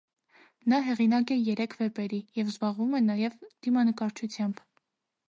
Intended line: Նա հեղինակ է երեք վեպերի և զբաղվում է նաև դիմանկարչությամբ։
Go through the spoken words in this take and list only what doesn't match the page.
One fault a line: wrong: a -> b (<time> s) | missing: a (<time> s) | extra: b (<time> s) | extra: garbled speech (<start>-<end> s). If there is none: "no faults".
no faults